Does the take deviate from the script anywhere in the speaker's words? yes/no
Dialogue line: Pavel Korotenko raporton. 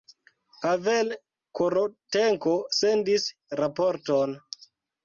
yes